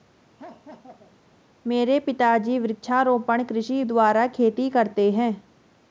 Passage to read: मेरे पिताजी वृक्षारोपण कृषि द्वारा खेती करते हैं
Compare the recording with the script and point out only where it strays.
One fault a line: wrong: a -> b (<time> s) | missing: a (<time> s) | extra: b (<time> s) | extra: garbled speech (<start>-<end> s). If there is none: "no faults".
no faults